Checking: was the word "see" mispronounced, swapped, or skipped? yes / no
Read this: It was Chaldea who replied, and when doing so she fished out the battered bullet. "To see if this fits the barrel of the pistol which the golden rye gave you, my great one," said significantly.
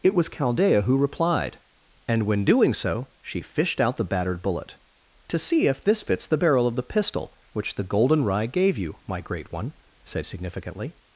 no